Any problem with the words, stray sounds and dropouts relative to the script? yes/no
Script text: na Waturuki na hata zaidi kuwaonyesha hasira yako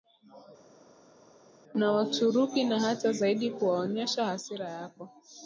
no